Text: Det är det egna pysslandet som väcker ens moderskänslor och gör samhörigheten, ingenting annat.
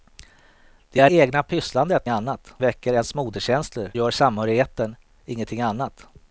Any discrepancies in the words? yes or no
yes